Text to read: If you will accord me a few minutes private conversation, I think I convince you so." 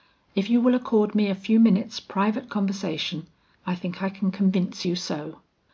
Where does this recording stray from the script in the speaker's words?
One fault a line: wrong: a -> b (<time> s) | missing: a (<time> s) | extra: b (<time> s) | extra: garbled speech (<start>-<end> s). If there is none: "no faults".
extra: can (4.1 s)